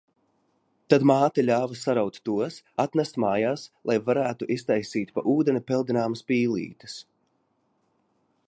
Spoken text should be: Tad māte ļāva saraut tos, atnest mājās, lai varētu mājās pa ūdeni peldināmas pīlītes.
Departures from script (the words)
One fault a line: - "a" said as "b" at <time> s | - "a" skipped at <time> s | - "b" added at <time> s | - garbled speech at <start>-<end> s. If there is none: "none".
- "mājās" said as "iztaisīt" at 4.6 s